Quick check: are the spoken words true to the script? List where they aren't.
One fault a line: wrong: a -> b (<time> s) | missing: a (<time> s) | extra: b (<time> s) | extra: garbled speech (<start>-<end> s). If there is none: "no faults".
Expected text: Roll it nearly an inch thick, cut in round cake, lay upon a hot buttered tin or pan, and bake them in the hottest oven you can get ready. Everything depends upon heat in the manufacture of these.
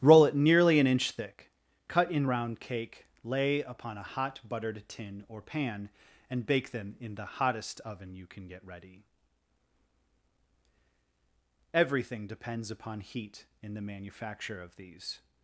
no faults